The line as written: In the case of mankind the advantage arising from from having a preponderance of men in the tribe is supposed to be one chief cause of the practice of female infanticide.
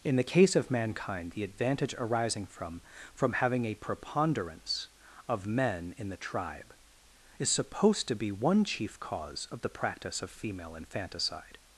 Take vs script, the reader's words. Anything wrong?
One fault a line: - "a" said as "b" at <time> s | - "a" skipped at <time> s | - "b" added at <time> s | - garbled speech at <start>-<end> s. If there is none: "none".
none